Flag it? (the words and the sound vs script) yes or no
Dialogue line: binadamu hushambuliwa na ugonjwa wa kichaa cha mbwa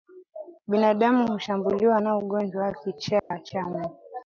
yes